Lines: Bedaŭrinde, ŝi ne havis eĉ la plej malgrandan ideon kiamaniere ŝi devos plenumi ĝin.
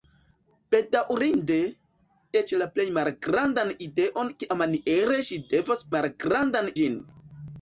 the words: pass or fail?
fail